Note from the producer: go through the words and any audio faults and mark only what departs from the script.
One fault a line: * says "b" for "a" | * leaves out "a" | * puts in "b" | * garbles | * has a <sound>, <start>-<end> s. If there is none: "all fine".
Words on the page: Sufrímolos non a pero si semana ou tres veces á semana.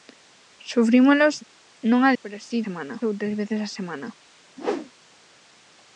* has a whoosh, 4.6-4.9 s